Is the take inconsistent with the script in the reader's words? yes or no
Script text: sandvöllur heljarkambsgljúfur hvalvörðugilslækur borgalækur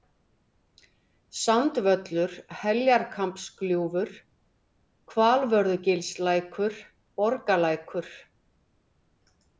no